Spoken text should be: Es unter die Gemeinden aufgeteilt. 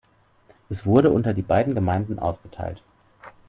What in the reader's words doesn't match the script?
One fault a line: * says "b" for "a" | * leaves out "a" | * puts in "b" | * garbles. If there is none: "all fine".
* puts in "wurde"
* puts in "beiden"